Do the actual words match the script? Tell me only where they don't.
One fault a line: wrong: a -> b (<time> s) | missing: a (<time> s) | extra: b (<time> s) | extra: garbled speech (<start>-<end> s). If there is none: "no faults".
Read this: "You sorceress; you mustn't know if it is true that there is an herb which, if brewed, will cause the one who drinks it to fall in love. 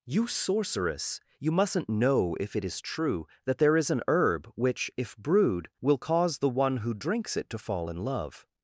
no faults